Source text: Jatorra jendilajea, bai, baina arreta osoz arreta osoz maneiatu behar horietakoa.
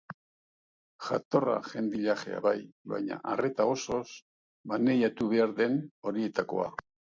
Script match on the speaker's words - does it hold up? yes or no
no